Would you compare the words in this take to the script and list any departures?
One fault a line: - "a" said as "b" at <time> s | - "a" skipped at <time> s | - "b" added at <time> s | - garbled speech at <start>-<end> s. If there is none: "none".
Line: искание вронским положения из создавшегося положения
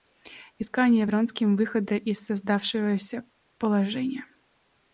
- "положения" said as "выхода" at 1.6 s